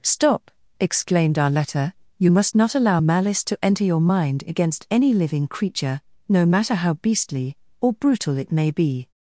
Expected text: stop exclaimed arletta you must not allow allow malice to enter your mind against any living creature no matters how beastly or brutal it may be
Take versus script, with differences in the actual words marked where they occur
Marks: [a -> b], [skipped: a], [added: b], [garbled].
stop exclaimed arletta you must not allow [skipped: allow] malice to enter your mind against any living creature no [matters -> matter] how beastly or brutal it may be